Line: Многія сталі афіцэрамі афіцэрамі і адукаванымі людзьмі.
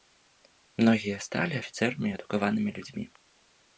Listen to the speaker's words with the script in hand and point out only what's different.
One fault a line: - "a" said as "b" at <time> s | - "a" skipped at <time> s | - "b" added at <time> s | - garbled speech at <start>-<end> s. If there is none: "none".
- "афіцэрамі" skipped at 2.1 s